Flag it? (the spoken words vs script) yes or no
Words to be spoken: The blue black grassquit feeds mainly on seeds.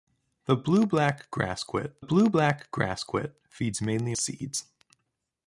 yes